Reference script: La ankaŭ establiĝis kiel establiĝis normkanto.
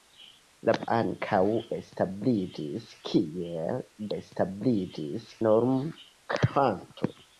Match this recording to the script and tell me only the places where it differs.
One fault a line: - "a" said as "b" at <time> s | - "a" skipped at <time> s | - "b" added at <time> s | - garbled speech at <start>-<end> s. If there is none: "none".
none